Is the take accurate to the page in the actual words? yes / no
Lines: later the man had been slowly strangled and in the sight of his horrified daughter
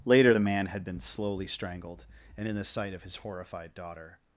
yes